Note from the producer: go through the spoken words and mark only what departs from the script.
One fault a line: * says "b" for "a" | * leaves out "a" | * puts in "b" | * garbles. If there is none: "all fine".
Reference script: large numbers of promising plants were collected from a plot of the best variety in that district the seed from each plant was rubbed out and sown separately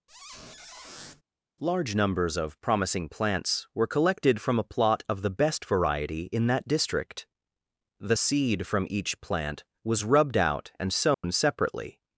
all fine